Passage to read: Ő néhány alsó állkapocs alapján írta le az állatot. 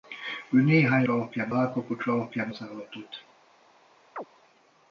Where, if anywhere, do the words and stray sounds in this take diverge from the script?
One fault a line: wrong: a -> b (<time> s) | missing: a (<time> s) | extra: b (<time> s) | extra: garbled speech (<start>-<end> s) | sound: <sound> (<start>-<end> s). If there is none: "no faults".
wrong: alsó -> alapján (1.1 s)
missing: írta le (2.5 s)
sound: chirp (4.2-4.2 s)